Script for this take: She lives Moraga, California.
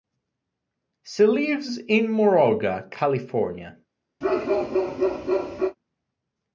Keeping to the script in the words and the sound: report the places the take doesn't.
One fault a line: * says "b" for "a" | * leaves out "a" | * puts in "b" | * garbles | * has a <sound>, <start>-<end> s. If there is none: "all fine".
* puts in "in"
* has a bark, 4.2-5.8 s